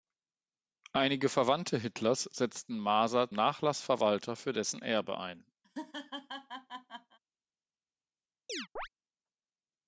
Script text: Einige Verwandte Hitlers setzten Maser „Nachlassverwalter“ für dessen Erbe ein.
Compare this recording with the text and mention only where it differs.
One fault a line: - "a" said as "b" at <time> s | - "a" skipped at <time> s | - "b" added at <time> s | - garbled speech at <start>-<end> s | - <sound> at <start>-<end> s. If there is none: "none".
- laugh at 5.6-7.2 s
- chirp at 8.5-8.9 s